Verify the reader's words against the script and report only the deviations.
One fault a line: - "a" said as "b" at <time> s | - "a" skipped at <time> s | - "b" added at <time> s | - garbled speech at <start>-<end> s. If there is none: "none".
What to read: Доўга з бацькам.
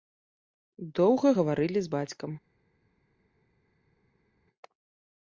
- "гаварылі" added at 1.3 s